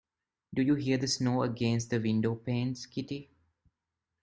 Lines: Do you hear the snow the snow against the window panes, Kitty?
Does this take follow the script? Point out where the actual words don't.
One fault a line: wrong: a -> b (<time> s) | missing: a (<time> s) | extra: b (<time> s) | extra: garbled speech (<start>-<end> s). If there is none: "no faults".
missing: the snow (1.4 s)